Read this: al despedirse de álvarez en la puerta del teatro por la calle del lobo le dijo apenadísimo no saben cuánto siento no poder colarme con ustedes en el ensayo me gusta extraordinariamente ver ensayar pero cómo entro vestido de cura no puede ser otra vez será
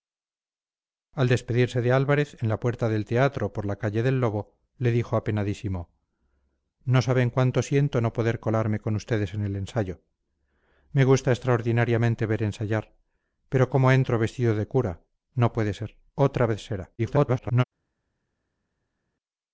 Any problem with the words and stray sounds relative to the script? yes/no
yes